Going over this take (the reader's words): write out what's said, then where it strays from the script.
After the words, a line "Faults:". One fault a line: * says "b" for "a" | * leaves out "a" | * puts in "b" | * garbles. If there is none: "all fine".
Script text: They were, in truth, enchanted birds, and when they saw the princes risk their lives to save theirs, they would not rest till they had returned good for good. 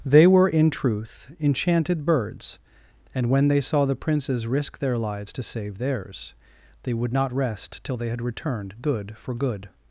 They were, in truth, enchanted birds, and when they saw the princes risk their lives to save theirs, they would not rest till they had returned good for good.
Faults:
all fine